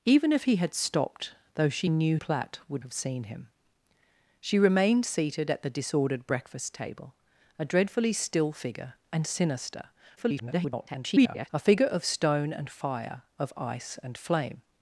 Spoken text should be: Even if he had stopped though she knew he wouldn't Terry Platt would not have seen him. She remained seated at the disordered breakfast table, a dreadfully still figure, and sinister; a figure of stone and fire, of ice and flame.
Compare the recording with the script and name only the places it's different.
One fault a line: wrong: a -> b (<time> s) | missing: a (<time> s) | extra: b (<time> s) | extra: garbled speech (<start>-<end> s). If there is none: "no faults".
missing: he wouldn't Terry (2.2 s)
missing: not (2.8 s)
extra: garbled speech (10.2-11.5 s)